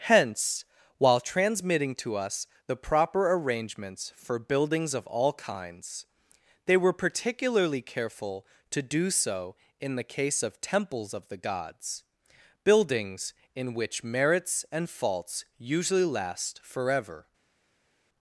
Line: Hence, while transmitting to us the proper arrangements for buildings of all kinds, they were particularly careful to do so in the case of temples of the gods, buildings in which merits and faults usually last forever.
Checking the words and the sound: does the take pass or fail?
pass